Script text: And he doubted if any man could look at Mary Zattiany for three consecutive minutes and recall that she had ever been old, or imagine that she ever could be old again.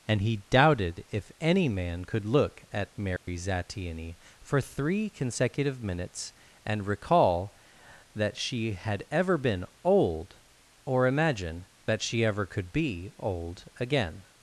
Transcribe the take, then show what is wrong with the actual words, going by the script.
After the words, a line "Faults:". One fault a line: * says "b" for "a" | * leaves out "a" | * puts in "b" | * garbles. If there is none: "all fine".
And he doubted if any man could look at Mary Zattiany for three consecutive minutes and recall that she had ever been old, or imagine that she ever could be old again.
Faults:
all fine